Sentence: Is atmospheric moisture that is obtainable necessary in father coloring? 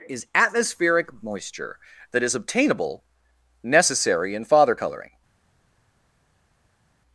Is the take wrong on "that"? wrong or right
right